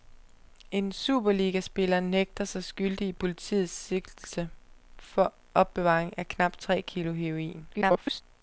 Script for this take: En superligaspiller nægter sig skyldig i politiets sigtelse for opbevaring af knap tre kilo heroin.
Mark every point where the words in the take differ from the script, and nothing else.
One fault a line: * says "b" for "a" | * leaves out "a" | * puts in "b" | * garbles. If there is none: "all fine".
* garbles